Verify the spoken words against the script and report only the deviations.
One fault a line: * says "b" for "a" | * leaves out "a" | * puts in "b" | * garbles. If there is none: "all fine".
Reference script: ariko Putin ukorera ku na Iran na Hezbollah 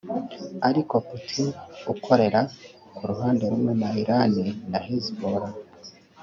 * puts in "ruhande rumwe"